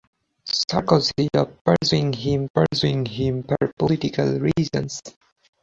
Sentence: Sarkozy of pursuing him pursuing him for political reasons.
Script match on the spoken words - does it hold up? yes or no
yes